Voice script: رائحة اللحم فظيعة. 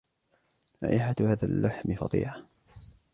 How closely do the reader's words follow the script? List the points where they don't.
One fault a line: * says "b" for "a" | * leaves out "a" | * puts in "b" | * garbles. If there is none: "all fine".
* puts in "هذا"